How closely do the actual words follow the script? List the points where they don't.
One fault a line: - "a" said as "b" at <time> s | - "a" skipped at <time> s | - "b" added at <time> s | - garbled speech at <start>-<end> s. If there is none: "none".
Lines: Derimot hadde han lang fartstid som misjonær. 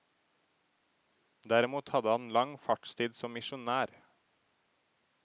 none